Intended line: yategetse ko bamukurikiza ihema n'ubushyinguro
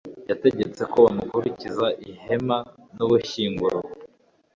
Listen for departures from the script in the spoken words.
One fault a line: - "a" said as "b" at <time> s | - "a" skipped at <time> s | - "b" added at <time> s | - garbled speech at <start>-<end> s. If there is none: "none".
none